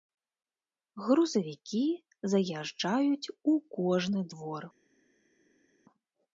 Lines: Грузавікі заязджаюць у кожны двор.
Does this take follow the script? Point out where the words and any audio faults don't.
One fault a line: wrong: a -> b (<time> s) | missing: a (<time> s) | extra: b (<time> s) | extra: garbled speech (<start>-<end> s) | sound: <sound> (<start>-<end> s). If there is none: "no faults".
no faults